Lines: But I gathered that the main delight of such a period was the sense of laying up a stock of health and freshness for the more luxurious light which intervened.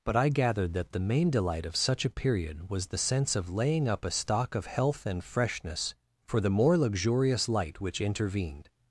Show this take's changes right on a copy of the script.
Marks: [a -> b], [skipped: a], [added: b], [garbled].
But I gathered that the main delight of such a period was the sense of laying up a stock of health and freshness for the more luxurious light which intervened.